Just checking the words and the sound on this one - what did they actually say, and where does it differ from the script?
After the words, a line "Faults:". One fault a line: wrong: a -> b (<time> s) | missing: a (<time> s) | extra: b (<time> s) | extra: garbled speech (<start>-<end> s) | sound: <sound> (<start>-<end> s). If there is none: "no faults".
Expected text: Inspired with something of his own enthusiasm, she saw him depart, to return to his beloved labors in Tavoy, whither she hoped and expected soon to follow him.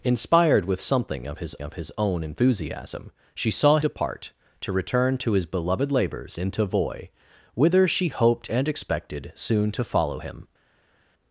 Inspired with something of his of his own enthusiasm, she saw depart, to return to his beloved labors in Tavoy, whither she hoped and expected soon to follow him.
Faults:
extra: of his (1.6 s)
missing: him (3.8 s)